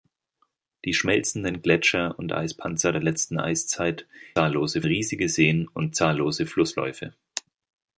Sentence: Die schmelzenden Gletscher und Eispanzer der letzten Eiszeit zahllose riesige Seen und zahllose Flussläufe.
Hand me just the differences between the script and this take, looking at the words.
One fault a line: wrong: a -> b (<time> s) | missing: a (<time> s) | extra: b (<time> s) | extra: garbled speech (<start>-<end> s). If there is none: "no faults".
no faults